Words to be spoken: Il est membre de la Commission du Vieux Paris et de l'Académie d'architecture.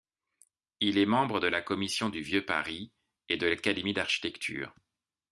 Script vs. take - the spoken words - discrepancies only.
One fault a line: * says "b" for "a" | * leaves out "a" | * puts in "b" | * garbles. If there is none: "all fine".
all fine